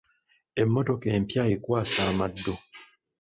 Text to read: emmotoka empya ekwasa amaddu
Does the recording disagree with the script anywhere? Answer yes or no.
no